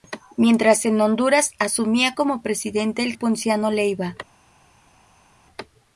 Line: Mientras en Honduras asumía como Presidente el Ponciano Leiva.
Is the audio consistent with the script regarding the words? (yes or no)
yes